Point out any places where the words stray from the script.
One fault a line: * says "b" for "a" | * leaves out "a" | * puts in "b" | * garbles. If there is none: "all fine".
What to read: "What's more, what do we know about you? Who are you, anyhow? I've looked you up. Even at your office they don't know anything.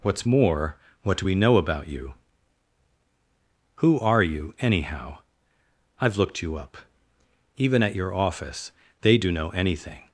* says "do" for "don't"